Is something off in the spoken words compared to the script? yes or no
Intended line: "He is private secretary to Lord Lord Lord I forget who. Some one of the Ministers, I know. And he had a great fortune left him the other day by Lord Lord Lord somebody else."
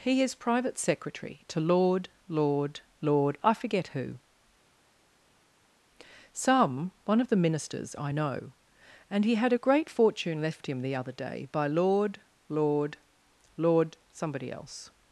no